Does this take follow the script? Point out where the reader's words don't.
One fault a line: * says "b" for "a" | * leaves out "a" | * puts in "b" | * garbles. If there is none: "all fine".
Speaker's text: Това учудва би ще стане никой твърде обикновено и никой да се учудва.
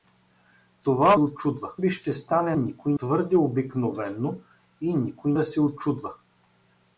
all fine